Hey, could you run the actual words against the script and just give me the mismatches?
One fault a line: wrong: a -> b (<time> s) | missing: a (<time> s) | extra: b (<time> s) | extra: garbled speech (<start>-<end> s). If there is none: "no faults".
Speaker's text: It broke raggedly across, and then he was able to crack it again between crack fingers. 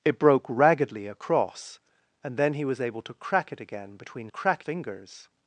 no faults